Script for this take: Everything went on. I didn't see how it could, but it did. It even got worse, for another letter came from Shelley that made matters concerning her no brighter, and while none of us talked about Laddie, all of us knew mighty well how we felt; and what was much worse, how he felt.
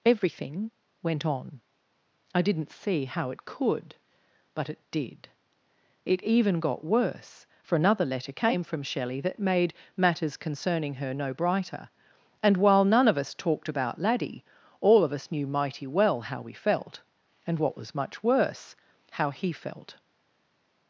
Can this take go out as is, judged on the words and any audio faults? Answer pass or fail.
pass